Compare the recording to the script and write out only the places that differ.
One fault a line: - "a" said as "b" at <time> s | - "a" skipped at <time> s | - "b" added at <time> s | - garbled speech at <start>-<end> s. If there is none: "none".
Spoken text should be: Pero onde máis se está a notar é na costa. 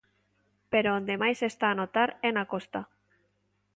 none